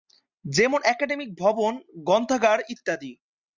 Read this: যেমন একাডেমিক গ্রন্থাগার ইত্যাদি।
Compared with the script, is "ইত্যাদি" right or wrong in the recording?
right